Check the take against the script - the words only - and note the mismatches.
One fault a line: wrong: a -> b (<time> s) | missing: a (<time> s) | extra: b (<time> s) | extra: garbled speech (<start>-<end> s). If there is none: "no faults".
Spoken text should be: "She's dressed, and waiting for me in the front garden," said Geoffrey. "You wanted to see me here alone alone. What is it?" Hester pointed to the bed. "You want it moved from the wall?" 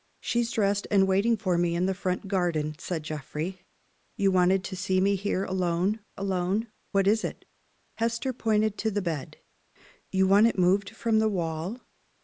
no faults